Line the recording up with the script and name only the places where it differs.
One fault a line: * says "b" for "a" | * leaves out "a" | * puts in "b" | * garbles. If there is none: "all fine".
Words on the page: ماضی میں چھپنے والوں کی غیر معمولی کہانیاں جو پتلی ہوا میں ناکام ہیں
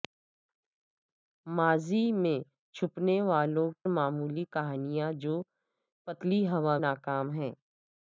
* leaves out "کی غیر"
* leaves out "میں"